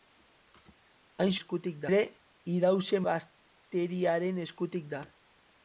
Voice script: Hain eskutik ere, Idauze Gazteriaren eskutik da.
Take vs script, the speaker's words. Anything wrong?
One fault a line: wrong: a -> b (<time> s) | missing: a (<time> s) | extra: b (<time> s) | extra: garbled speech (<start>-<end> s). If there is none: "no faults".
no faults